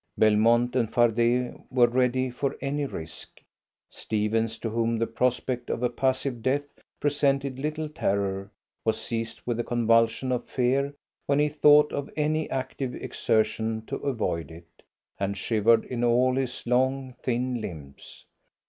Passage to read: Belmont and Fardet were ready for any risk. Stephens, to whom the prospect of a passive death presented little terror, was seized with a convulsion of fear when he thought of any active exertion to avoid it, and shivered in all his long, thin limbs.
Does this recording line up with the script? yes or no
yes